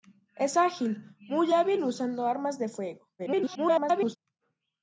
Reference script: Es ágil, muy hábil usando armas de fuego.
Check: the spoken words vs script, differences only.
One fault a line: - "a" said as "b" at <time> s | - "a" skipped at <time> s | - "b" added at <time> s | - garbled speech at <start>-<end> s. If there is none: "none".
- garbled speech at 3.2-4.2 s